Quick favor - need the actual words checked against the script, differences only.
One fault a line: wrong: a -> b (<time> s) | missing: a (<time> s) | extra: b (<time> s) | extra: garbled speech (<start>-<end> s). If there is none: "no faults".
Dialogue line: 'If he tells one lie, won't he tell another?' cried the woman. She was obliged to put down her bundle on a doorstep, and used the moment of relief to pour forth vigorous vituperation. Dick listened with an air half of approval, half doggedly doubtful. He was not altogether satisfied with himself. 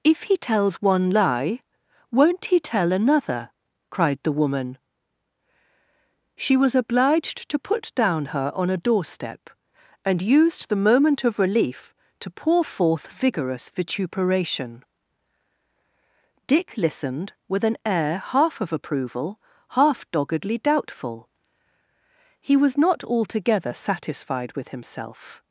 missing: bundle (8.5 s)